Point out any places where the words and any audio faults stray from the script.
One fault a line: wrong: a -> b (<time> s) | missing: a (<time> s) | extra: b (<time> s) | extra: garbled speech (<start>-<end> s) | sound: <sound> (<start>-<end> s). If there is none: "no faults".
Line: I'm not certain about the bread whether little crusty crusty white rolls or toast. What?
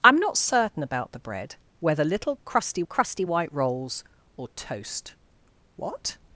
no faults